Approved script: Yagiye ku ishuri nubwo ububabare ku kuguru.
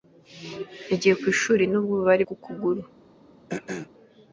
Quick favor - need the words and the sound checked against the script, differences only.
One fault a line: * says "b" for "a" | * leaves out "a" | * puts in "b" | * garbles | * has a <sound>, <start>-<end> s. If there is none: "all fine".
* has a throat clearing, 3.5-3.9 s